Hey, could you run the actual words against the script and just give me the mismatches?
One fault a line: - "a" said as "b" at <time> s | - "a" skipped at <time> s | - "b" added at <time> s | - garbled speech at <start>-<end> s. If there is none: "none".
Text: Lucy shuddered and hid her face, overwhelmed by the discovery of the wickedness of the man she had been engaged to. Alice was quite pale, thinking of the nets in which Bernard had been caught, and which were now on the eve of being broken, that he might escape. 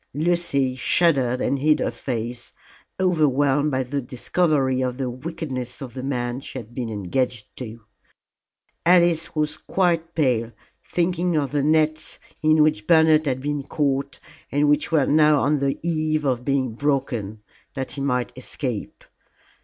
none